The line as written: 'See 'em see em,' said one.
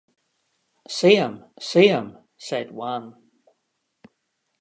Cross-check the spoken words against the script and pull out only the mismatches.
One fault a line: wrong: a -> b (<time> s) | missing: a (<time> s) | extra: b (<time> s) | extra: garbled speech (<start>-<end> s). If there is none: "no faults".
no faults